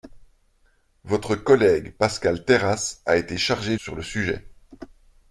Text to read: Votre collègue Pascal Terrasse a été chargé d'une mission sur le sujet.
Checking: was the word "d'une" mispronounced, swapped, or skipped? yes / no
yes